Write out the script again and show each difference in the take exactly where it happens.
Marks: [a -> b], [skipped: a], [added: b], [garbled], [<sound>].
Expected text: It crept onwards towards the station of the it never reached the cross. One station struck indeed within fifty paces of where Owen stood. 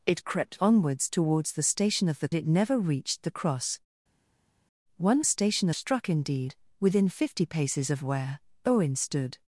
It crept onwards towards the station of the it never reached the cross. One station struck indeed within fifty paces of where Owen stood.